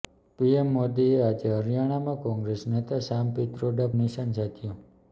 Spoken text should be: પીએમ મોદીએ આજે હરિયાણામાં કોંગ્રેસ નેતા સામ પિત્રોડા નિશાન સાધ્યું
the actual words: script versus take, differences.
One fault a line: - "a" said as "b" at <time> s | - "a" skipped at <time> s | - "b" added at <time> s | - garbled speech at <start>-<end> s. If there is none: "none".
none